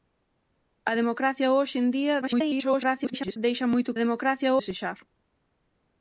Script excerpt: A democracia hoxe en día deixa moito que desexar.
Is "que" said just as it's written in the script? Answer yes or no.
no